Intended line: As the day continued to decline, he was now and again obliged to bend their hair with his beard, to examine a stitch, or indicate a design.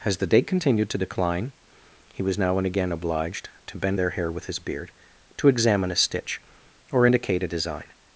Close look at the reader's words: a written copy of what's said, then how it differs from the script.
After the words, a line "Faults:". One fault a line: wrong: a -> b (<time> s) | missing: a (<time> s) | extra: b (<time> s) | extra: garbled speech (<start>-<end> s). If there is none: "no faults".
As the day continued to decline, he was now and again obliged to bend their hair with his beard, to examine a stitch, or indicate a design.
Faults:
no faults